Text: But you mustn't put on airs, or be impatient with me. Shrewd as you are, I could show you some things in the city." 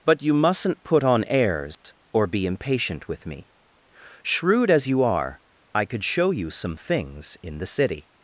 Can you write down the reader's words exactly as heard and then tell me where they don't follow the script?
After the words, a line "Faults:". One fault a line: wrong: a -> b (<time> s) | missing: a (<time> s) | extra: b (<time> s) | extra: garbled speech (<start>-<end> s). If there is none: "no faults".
But you mustn't put on airs, or be impatient with me. Shrewd as you are, I could show you some things in the city."
Faults:
no faults